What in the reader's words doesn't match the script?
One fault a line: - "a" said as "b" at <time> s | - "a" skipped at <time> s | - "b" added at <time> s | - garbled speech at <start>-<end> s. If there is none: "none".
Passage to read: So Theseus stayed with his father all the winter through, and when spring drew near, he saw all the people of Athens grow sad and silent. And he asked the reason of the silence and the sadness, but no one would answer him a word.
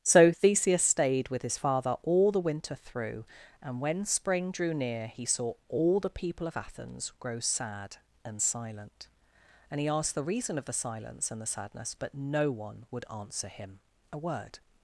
none